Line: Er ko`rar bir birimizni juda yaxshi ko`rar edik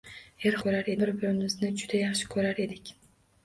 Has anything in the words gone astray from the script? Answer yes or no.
no